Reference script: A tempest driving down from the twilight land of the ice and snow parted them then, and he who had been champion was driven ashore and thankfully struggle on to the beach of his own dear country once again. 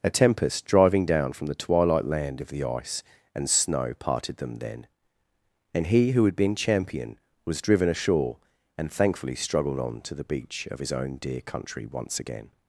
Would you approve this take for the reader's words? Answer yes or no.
no